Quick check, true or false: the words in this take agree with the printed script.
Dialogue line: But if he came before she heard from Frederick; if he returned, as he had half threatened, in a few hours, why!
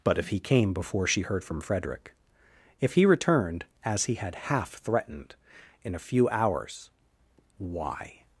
true